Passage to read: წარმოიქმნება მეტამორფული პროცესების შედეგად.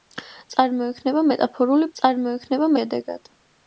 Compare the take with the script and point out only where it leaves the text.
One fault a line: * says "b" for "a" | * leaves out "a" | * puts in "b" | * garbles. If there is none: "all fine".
* says "წარმოიქმნება" for "პროცესების"